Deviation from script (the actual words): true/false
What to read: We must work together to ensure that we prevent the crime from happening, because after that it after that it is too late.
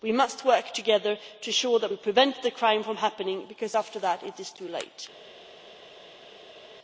true